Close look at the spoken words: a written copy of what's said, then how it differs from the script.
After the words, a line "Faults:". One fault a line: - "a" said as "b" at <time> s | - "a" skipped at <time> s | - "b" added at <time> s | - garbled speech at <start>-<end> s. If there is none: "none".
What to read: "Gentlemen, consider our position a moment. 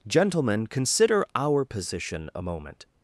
"Gentlemen, consider our position a moment.
Faults:
none